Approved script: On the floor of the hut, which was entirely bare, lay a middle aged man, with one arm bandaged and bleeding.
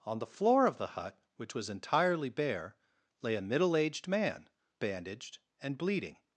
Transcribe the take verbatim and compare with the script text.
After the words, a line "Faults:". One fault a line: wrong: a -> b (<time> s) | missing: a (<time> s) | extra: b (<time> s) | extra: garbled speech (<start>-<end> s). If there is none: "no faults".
On the floor of the hut, which was entirely bare, lay a middle aged man, bandaged and bleeding.
Faults:
missing: with one arm (4.5 s)